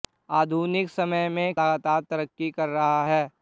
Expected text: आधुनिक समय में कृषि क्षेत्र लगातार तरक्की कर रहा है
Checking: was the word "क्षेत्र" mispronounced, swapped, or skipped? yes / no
yes